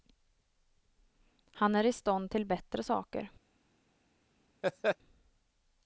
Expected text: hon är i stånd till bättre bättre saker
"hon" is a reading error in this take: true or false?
true